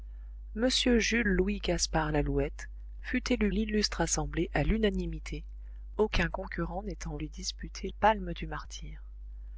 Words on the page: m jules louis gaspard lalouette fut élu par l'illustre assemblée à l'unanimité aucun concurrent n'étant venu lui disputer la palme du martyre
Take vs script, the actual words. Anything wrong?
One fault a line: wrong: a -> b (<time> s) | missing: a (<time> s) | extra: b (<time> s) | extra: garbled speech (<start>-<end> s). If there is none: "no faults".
missing: par (3.5 s)
missing: venu (7.2 s)
missing: la (7.9 s)